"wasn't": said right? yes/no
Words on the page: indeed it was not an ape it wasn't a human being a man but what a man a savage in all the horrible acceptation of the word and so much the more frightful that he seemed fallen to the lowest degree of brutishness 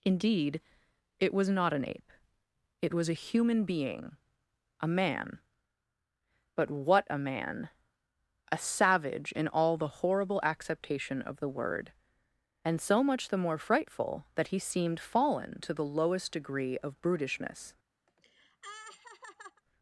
no